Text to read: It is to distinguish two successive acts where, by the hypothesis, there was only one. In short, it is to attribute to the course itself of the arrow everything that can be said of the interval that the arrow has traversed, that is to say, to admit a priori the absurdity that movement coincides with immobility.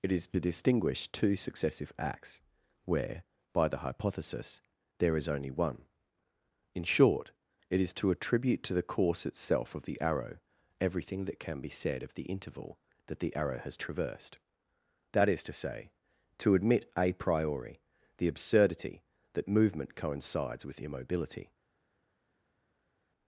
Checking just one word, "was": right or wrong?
wrong